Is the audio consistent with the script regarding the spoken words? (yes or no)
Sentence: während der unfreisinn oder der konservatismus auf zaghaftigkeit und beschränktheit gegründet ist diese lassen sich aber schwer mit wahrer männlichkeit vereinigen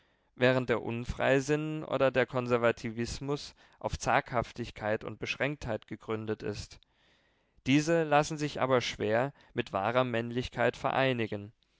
yes